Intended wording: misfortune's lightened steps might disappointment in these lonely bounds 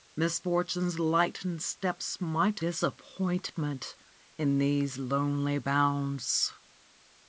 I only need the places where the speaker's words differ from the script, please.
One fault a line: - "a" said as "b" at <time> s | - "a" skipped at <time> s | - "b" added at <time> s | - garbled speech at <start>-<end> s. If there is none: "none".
none